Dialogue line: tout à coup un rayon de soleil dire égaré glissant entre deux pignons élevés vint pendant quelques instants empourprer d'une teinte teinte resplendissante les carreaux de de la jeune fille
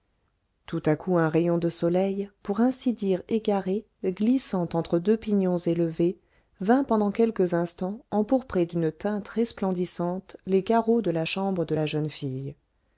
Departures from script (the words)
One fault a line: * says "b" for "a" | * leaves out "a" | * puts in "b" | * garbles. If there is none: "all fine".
* puts in "pour ainsi"
* leaves out "teinte"
* puts in "la chambre"